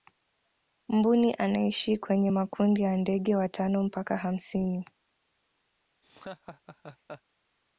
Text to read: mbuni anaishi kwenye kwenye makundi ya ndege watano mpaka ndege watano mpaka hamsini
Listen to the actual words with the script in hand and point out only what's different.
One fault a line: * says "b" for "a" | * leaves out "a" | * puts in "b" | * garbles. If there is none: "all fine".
* leaves out "kwenye"
* leaves out "ndege watano mpaka"